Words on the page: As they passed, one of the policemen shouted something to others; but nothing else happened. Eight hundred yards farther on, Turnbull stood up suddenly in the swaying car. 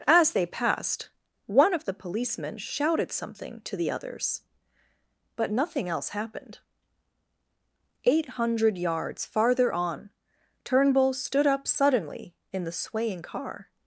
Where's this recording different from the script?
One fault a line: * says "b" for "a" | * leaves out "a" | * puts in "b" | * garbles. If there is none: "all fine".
* puts in "the"